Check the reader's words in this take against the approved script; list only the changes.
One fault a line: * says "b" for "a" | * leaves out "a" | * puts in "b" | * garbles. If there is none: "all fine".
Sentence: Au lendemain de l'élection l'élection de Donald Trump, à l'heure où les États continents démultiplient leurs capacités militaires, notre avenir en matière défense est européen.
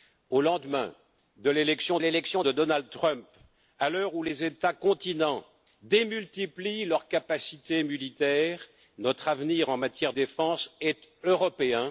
all fine